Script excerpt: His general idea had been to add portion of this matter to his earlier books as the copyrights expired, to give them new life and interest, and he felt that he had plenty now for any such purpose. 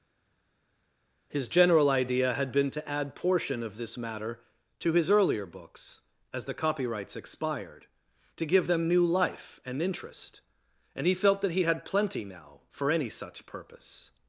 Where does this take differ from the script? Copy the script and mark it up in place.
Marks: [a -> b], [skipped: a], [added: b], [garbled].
His general idea had been to add portion of this matter to his earlier books as the copyrights expired, to give them new life and interest, and he felt that he had plenty now for any such purpose.